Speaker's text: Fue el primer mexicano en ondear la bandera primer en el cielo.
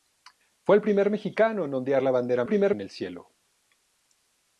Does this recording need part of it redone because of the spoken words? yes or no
no